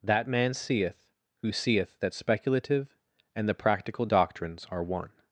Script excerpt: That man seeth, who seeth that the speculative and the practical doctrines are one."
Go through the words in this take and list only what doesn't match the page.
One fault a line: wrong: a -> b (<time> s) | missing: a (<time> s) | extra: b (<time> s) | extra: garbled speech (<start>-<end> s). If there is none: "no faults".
missing: the (2.1 s)